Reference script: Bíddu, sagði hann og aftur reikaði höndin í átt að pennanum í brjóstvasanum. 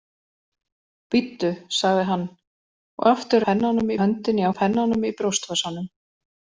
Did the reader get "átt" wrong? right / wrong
wrong